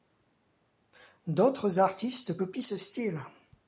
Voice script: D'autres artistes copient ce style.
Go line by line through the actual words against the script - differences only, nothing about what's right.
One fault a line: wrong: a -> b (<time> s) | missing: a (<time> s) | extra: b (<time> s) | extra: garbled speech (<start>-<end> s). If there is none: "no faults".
no faults